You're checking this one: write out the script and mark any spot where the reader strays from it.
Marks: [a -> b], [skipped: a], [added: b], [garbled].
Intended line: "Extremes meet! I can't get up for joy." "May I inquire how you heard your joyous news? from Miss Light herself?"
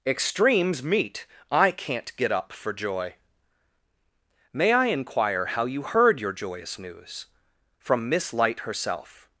"Extremes meet! I can't get up for joy." "May I inquire how you heard your joyous news? from Miss Light herself?"